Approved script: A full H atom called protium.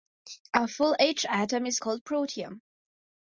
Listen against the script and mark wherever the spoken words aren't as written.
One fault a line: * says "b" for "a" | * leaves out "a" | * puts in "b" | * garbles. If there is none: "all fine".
* puts in "is"